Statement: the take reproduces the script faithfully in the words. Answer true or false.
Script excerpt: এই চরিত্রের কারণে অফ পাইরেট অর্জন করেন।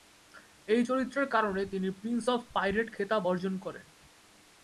false